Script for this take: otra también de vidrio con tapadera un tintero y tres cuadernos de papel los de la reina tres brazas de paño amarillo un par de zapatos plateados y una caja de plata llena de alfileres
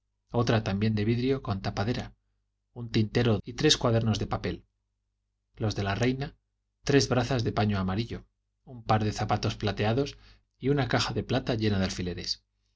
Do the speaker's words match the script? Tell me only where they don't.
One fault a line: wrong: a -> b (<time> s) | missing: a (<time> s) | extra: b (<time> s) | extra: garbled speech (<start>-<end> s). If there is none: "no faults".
no faults